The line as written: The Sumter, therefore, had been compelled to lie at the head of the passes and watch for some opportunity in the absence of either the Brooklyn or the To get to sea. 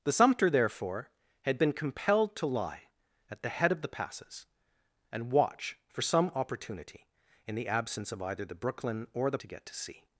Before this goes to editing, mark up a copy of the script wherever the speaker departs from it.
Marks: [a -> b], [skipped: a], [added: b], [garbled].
The Sumter, therefore, had been compelled to lie at the head of the passes and watch for some opportunity in the absence of either the Brooklyn or the To get to sea.